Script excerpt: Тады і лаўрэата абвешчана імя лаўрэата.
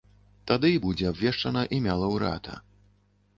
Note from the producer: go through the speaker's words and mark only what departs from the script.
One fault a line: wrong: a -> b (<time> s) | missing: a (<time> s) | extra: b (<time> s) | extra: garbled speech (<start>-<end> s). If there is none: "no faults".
wrong: лаўрэата -> будзе (0.8 s)